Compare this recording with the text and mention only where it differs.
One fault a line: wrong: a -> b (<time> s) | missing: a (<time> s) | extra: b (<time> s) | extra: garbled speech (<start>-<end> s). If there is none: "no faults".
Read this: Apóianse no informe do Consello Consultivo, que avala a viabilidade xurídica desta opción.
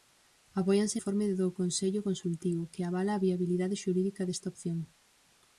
missing: no (1.0 s)